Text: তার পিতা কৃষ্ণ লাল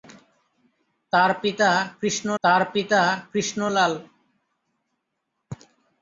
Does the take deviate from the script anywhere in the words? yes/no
yes